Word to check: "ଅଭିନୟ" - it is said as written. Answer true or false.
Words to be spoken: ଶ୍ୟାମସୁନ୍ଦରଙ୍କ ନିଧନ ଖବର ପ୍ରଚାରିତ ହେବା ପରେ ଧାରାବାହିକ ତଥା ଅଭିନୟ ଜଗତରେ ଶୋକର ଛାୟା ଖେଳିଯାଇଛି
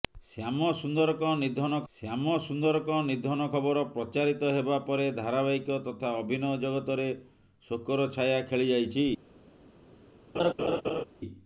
true